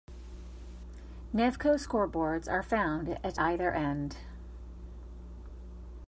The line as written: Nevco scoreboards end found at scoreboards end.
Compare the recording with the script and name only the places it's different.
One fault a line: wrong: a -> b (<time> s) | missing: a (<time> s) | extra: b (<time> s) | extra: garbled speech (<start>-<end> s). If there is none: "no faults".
wrong: end -> are (2.5 s)
wrong: scoreboards -> either (3.4 s)